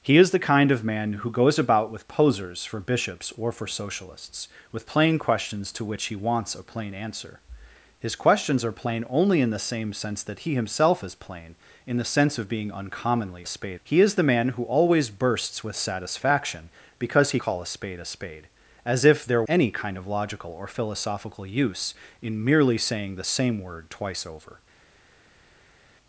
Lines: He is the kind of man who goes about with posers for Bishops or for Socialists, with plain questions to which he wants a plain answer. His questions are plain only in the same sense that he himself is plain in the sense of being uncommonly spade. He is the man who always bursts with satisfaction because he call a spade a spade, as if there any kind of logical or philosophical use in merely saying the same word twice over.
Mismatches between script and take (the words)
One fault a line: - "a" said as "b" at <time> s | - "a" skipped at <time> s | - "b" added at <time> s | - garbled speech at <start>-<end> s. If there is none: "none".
none